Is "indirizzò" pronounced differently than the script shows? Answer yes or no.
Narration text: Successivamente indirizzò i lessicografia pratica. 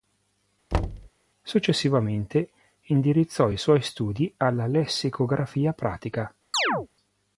no